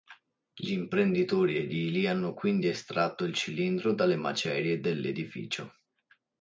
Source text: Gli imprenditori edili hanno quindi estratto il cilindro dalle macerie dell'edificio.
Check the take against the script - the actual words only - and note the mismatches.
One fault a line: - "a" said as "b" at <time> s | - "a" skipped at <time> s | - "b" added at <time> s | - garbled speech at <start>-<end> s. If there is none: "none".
none